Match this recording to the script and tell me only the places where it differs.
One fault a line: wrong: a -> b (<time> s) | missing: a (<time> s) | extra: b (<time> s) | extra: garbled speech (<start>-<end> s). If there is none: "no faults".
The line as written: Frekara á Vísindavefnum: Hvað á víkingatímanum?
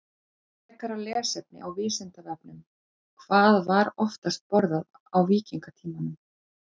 extra: lesefni (1.0 s)
extra: var oftast borðað (3.7 s)